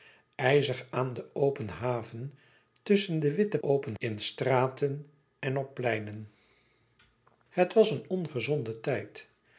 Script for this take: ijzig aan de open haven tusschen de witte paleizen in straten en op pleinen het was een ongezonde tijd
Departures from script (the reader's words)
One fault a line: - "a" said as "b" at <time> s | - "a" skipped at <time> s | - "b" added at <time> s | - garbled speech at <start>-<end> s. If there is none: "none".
- "paleizen" said as "open" at 3.6 s